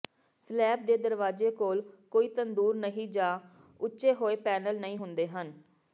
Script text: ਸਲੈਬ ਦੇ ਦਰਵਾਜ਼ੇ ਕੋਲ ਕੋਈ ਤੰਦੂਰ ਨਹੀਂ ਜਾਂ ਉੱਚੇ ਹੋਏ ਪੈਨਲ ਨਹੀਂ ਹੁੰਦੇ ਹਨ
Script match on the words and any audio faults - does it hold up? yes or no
yes